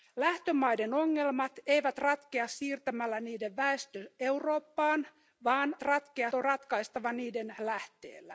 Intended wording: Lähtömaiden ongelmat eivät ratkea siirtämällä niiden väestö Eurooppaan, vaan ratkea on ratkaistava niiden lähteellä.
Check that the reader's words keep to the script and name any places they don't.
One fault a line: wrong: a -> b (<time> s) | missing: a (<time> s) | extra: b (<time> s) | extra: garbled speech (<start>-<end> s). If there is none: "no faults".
no faults